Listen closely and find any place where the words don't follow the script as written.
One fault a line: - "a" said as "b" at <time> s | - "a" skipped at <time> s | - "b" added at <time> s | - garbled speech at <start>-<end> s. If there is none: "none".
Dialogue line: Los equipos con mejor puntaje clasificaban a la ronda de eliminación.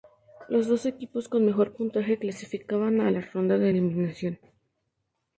- "dos" added at 0.7 s